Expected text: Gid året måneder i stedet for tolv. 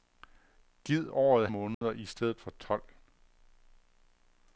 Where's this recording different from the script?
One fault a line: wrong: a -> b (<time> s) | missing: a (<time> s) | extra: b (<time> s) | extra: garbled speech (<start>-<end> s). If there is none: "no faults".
no faults